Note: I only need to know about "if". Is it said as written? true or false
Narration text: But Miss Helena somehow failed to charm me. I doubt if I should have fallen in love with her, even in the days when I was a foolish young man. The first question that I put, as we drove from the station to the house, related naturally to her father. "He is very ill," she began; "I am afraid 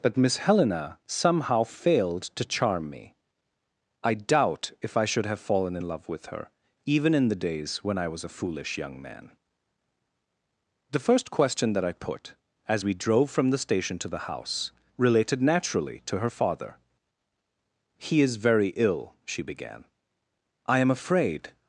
true